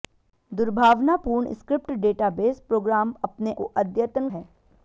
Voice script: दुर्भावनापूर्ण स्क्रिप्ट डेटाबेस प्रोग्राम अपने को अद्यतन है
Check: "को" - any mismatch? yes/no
no